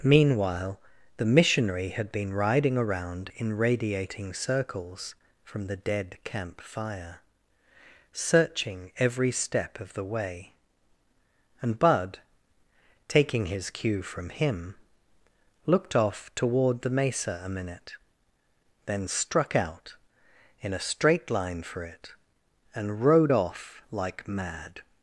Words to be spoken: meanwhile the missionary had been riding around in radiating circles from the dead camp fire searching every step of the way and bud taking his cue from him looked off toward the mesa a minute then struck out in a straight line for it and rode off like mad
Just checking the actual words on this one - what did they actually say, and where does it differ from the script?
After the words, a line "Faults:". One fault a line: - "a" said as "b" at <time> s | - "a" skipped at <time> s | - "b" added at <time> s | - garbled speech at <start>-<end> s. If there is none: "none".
meanwhile the missionary had been riding around in radiating circles from the dead camp fire searching every step of the way and bud taking his cue from him looked off toward the mesa a minute then struck out in a straight line for it and rode off like mad
Faults:
none